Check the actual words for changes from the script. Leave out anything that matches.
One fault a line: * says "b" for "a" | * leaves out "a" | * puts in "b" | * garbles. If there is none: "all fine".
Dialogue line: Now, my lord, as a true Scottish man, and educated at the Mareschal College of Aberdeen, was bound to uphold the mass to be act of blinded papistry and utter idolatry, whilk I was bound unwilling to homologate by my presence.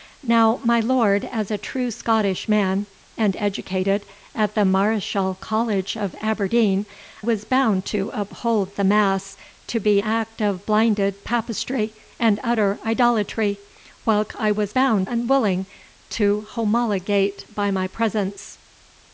all fine